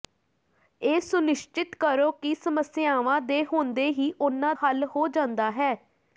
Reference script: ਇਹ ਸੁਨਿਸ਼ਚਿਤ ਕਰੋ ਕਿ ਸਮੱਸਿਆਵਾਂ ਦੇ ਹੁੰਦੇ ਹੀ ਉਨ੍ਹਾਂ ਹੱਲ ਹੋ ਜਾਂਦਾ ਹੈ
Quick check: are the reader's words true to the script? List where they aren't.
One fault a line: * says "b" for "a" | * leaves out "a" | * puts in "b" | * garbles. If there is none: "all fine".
all fine